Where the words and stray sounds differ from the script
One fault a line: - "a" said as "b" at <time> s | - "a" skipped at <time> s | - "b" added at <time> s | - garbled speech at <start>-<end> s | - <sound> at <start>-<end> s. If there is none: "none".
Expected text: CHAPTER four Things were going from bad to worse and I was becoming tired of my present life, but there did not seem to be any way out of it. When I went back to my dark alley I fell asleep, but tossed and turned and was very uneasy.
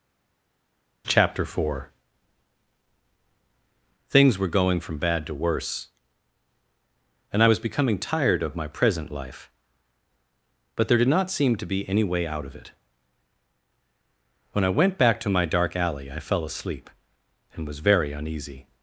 - "but tossed and turned" skipped at 16.9 s